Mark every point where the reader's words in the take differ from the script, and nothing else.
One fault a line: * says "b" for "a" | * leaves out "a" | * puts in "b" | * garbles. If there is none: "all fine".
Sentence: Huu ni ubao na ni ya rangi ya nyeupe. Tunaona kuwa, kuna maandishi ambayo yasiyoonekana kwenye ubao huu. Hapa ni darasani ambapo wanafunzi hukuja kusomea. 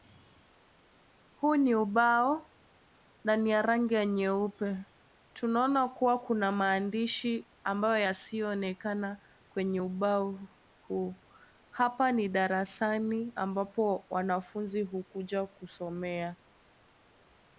all fine